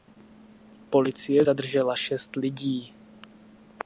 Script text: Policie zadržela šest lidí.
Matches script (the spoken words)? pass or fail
pass